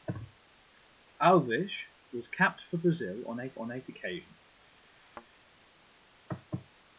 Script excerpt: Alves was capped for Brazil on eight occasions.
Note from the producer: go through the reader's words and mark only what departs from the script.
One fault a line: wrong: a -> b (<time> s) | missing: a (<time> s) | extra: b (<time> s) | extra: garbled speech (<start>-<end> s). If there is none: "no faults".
extra: on eight (3.6 s)